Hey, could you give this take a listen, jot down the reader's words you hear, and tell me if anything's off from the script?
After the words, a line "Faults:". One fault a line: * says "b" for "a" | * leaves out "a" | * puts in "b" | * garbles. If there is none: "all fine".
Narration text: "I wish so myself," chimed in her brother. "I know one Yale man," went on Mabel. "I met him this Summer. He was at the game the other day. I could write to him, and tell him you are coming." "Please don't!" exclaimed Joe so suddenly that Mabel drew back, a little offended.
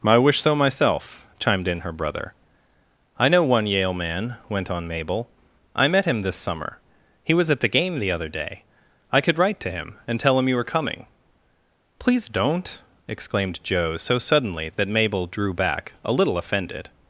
"I wish so myself," chimed in her brother. "I know one Yale man," went on Mabel. "I met him this Summer. He was at the game the other day. I could write to him, and tell him you were coming." "Please don't!" exclaimed Joe so suddenly that Mabel drew back, a little offended.
Faults:
* says "were" for "are"